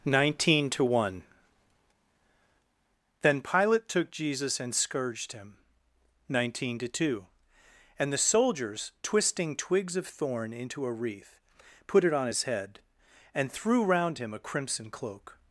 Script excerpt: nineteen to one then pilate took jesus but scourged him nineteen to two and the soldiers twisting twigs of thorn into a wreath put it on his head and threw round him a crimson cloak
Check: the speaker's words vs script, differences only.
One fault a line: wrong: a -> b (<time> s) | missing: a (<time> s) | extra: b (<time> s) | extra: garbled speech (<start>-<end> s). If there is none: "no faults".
wrong: but -> and (4.6 s)